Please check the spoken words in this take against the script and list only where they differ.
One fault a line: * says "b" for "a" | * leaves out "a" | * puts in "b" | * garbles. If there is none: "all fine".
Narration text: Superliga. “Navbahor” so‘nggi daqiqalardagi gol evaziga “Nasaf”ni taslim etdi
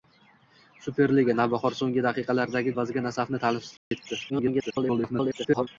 * leaves out "gol"
* garbles